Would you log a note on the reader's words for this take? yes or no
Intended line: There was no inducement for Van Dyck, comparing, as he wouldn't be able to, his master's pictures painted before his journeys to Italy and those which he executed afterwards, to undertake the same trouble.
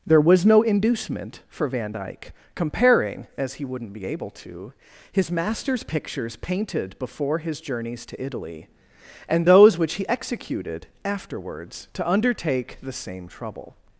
no